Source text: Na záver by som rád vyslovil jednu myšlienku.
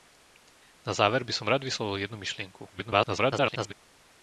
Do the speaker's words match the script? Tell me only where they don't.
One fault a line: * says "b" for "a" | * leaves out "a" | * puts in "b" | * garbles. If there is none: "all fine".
* garbles